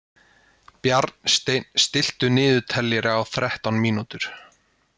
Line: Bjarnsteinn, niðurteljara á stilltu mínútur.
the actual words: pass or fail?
fail